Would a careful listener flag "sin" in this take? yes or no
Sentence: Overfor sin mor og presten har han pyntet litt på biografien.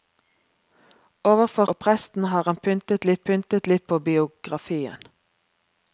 yes